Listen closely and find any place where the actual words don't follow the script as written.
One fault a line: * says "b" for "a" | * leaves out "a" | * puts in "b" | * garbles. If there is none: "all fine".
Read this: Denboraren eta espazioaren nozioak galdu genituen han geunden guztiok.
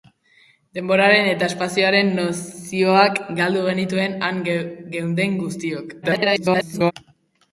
* garbles